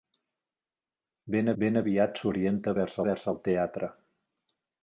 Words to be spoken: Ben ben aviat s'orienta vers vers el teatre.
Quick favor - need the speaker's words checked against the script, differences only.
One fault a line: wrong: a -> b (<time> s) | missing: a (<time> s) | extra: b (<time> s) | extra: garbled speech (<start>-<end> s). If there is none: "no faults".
no faults